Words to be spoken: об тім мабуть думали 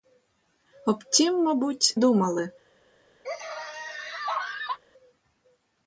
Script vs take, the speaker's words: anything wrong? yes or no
no